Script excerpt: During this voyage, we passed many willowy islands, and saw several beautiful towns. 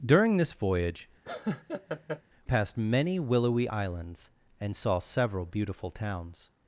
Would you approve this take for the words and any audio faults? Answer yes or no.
no